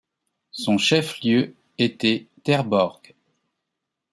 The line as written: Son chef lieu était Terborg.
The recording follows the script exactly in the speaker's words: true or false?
true